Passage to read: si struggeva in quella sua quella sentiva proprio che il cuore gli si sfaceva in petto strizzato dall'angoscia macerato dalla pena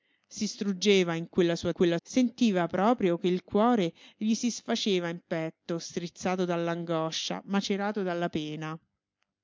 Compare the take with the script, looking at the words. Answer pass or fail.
pass